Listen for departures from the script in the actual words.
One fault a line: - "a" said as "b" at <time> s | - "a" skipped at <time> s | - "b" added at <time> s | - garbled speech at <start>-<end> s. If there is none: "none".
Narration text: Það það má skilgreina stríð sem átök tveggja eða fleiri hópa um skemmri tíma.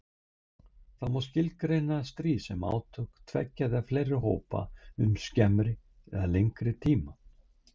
- "það" skipped at 1.1 s
- "eða lengri" added at 6.1 s